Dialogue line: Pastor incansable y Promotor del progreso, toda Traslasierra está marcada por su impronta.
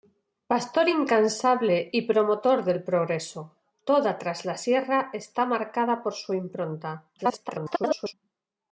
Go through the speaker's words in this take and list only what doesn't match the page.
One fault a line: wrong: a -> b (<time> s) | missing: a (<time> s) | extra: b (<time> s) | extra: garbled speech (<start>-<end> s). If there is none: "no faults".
extra: garbled speech (7.2-8.1 s)